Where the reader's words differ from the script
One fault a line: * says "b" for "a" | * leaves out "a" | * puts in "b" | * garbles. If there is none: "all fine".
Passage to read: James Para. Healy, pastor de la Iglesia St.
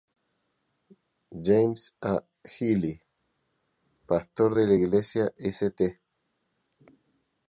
* says "A" for "Para"